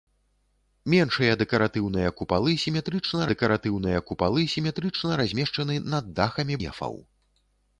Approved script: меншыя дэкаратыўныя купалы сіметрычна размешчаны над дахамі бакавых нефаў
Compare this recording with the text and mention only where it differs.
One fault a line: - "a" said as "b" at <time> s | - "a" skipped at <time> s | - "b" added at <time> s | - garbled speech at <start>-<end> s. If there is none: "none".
- "дэкаратыўныя купалы сіметрычна" added at 3.3 s
- "бакавых" skipped at 6.5 s